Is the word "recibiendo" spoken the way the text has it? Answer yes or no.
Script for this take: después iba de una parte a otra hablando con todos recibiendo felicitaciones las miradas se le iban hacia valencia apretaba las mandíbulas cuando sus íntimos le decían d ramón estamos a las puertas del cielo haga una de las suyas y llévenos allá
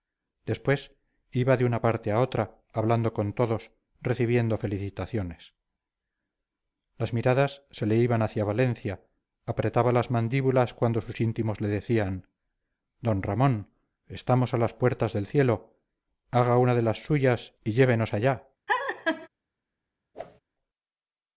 yes